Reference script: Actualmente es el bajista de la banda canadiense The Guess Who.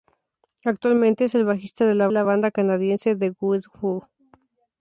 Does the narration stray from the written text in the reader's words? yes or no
yes